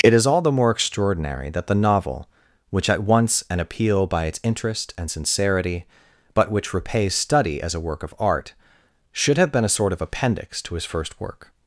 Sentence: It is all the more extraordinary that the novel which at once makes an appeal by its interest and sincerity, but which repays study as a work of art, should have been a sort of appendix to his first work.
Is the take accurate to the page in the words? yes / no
no